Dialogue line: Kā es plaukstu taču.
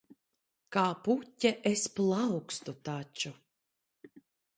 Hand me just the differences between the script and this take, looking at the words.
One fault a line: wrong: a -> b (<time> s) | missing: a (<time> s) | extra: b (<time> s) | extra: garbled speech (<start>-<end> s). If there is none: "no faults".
extra: puķe (1.1 s)